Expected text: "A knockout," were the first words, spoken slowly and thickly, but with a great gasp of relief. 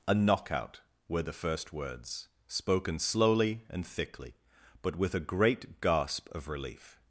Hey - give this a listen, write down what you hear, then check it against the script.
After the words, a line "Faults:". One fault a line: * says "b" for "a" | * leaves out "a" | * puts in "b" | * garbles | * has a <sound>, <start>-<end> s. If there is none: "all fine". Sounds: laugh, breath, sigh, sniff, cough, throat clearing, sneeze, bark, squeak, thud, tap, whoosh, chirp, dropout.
"A knockout," were the first words, spoken slowly and thickly, but with a great gasp of relief.
Faults:
all fine